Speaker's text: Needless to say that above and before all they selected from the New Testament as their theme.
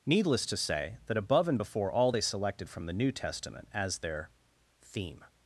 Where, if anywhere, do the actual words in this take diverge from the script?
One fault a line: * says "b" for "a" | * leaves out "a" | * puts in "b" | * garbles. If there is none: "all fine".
all fine